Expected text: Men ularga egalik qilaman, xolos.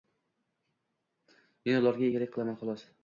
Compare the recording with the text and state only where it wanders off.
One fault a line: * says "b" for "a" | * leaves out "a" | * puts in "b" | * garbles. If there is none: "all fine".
all fine